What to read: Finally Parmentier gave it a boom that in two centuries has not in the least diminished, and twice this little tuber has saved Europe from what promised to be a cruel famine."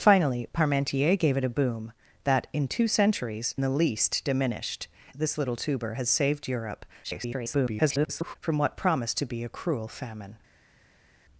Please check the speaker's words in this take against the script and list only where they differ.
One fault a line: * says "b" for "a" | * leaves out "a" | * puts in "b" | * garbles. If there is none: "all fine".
* leaves out "has not in"
* leaves out "and twice"
* garbles